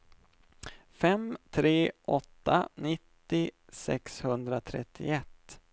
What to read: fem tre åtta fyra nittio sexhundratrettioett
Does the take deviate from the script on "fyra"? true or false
true